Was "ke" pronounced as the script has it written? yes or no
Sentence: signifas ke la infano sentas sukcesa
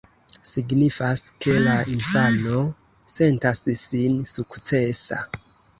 yes